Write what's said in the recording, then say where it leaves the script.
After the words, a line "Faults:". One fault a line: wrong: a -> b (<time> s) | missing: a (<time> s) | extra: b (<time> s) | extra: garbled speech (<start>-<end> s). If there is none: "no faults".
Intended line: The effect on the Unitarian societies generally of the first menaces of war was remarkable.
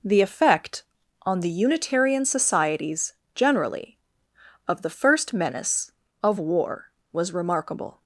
The effect on the Unitarian societies generally of the first menace of war was remarkable.
Faults:
wrong: menaces -> menace (5.3 s)